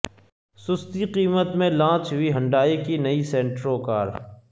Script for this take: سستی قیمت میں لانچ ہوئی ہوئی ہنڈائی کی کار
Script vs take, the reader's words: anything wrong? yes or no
yes